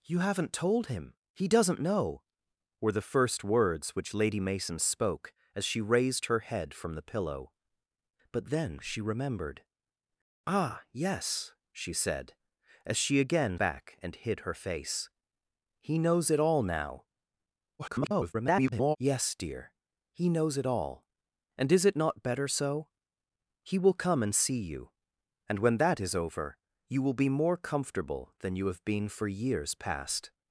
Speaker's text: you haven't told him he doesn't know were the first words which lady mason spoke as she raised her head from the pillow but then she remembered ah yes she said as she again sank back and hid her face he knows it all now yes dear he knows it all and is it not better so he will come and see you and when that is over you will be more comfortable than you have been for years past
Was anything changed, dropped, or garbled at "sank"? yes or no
yes